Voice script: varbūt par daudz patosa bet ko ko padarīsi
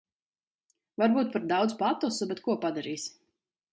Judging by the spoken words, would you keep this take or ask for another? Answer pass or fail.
fail